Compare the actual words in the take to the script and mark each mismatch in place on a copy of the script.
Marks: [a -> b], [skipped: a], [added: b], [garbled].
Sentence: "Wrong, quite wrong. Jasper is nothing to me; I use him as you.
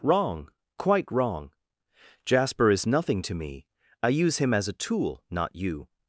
"Wrong, quite wrong. Jasper is nothing to me; I use him as [added: a tool not] you.